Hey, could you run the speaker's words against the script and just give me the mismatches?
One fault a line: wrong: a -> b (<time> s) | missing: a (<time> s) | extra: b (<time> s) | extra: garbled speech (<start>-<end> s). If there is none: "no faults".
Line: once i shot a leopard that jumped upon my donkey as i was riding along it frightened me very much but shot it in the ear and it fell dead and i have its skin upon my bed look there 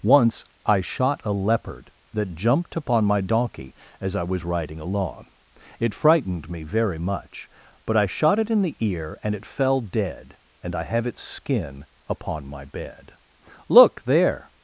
extra: i (8.0 s)